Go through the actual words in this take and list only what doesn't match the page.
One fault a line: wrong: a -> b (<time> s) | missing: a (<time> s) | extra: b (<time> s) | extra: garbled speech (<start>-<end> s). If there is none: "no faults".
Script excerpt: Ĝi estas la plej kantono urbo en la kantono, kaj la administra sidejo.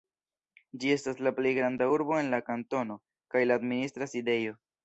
wrong: kantono -> granda (1.6 s)